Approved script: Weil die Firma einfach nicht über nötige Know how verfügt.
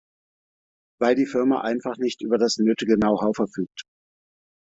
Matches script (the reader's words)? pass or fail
fail